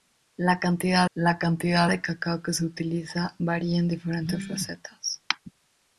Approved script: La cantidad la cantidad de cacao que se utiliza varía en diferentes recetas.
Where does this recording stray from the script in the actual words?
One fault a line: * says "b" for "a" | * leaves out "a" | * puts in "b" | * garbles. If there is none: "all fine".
all fine